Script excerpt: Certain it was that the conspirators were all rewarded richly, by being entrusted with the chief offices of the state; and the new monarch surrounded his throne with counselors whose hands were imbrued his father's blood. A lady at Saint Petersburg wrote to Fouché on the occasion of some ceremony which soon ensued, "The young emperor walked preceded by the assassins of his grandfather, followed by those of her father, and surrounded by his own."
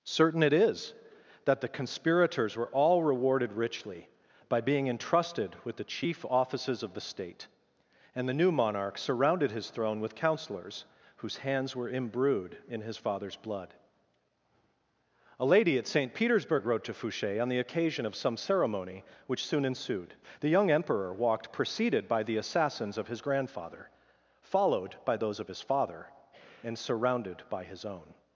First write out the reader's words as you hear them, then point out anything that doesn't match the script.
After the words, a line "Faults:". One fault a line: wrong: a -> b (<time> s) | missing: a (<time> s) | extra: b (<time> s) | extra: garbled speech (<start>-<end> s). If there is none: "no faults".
Certain it is that the conspirators were all rewarded richly, by being entrusted with the chief offices of the state; and the new monarch surrounded his throne with counselors whose hands were imbrued in his father's blood. A lady at Saint Petersburg wrote to Fouché on the occasion of some ceremony which soon ensued, "The young emperor walked preceded by the assassins of his grandfather, followed by those of his father, and surrounded by his own."
Faults:
wrong: was -> is (0.5 s)
extra: in (12.7 s)
wrong: her -> his (25.5 s)